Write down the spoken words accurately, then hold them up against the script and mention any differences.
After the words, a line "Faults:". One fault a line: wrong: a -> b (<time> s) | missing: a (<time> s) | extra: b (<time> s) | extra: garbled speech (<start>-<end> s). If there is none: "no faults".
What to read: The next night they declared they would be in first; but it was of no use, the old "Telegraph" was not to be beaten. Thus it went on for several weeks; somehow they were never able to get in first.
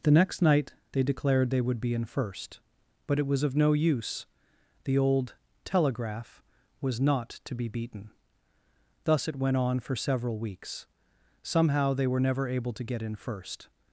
The next night they declared they would be in first; but it was of no use, the old "Telegraph" was not to be beaten. Thus it went on for several weeks; somehow they were never able to get in first.
Faults:
no faults